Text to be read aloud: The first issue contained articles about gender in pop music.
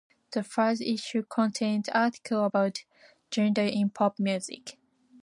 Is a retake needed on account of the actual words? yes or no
no